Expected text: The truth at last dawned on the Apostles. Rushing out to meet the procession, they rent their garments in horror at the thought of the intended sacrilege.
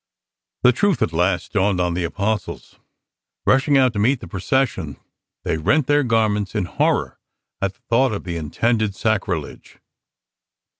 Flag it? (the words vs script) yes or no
no